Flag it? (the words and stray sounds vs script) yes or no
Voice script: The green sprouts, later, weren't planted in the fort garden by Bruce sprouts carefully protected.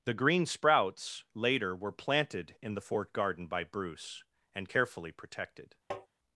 yes